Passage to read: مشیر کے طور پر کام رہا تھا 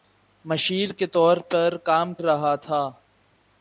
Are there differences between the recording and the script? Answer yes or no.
no